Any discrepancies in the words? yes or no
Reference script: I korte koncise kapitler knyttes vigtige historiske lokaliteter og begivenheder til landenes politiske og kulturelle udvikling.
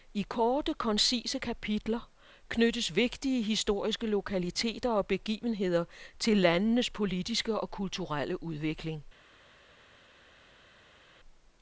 no